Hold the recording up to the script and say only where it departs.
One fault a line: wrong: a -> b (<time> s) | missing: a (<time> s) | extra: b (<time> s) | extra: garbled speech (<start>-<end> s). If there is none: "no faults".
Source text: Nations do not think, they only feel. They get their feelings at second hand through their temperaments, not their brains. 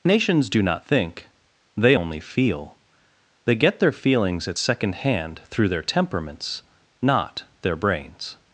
no faults